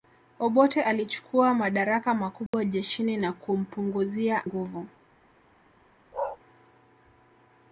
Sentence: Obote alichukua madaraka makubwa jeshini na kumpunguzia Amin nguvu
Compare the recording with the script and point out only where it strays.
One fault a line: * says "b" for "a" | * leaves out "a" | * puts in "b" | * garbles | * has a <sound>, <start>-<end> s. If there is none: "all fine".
* has a dropout, 2.5-2.5 s
* leaves out "Amin"
* has a bark, 6.1-6.4 s